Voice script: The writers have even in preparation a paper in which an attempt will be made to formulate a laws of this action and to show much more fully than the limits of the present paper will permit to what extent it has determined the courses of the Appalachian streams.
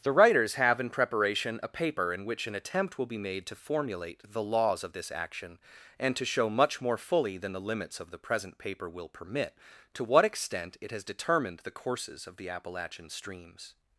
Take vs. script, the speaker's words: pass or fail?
fail